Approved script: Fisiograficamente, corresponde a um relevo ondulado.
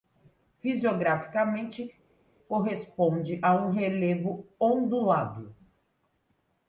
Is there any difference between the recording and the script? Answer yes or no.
no